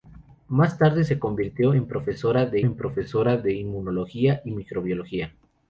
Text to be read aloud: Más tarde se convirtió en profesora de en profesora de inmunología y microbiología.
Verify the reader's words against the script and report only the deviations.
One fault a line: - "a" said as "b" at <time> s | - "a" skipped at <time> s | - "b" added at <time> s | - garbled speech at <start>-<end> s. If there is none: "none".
none